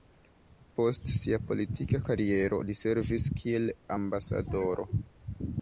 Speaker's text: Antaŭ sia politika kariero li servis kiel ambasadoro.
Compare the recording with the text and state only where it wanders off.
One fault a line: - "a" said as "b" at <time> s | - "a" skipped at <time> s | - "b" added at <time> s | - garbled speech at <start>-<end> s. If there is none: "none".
- "Antaŭ" said as "Post" at 0.8 s